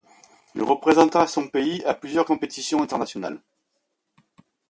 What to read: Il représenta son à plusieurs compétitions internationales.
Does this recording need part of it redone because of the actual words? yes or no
yes